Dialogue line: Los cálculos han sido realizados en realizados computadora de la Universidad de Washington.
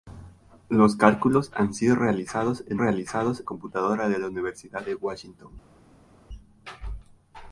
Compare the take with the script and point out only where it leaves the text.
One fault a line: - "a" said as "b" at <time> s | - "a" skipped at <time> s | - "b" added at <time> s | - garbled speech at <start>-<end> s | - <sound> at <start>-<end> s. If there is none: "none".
none